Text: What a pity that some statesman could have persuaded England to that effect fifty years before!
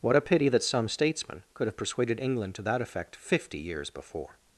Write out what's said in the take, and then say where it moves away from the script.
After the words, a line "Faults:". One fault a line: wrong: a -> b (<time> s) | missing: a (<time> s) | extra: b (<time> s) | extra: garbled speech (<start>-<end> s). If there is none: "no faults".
What a pity that some statesman could have persuaded England to that effect fifty years before!
Faults:
no faults